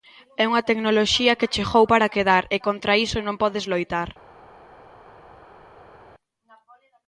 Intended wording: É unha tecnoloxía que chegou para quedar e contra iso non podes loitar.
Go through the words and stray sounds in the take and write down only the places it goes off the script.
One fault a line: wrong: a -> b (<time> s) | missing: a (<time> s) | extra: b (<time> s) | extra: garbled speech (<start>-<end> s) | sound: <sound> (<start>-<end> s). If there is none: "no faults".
no faults